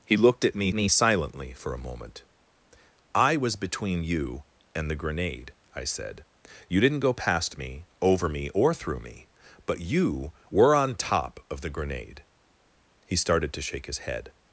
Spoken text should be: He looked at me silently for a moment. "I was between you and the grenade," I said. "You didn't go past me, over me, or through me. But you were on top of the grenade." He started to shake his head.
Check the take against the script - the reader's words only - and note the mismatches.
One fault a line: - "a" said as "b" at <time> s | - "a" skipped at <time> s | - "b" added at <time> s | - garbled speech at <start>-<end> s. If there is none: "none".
- "me" added at 0.7 s